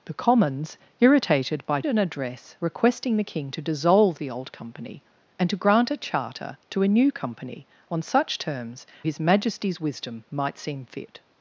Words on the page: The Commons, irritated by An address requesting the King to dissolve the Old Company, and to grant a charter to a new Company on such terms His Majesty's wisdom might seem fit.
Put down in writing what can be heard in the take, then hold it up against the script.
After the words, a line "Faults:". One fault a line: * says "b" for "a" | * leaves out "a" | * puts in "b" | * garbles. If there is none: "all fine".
The Commons, irritated by An address requesting the King to dissolve the Old Company, and to grant a charter to a new Company on such terms His Majesty's wisdom might seem fit.
Faults:
all fine